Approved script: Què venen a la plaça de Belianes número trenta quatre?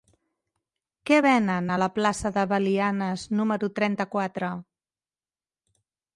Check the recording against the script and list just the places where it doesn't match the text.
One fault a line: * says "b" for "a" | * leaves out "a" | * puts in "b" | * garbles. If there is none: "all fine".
all fine